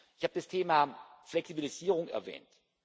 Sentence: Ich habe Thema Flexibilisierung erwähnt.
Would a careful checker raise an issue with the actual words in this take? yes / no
yes